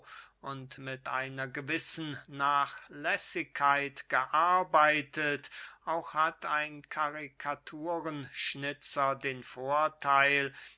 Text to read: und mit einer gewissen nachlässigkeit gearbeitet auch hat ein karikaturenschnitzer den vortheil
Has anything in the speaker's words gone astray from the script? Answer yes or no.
no